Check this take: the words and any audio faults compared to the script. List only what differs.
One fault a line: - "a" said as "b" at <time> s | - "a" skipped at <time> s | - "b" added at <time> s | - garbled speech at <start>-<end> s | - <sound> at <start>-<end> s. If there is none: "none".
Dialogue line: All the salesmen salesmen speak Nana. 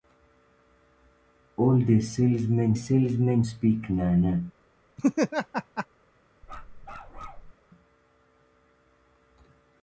- laugh at 5.0-5.9 s
- bark at 6.4-7.5 s